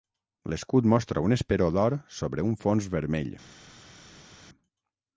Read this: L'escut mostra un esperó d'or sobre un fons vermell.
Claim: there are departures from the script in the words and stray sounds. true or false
false